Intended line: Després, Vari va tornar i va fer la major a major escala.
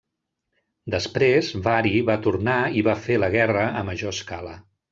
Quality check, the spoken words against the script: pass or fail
fail